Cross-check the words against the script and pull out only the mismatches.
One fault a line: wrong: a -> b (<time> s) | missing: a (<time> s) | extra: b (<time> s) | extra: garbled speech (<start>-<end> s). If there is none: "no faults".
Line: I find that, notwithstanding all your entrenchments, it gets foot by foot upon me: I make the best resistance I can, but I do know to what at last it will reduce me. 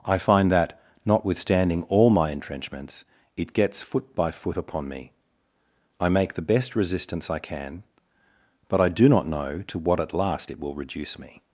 wrong: your -> my (2.1 s)
extra: not (9.1 s)